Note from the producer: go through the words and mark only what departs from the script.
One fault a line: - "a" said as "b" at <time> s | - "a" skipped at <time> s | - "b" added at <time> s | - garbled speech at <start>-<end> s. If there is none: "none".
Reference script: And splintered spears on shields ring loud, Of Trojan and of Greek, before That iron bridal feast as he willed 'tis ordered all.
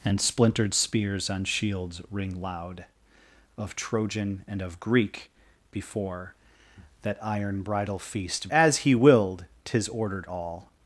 none